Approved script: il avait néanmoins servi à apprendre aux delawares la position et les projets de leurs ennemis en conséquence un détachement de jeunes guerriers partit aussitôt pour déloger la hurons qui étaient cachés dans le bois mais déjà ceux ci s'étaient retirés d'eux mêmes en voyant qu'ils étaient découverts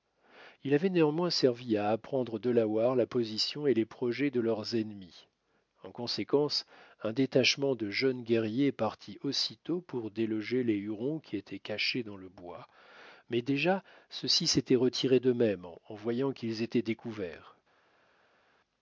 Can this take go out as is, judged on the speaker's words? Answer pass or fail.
fail